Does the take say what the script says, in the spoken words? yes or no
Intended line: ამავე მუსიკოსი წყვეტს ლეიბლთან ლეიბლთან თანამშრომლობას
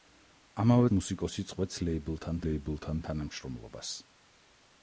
yes